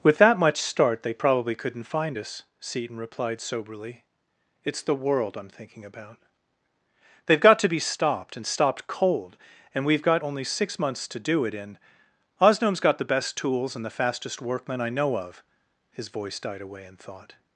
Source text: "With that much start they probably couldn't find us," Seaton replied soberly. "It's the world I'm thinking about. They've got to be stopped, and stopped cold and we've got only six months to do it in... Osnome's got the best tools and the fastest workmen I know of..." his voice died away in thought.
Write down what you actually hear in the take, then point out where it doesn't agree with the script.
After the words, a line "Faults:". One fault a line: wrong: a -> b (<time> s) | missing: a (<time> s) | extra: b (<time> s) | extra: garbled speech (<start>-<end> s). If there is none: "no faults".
"With that much start they probably couldn't find us," Seaton replied soberly. "It's the world I'm thinking about. They've got to be stopped, and stopped cold and we've got only six months to do it in... Osnome's got the best tools and the fastest workmen I know of..." his voice died away in thought.
Faults:
no faults